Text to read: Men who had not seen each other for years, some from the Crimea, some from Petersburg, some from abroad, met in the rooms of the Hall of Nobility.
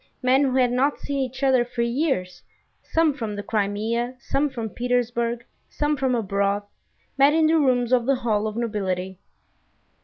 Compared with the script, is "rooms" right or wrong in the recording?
right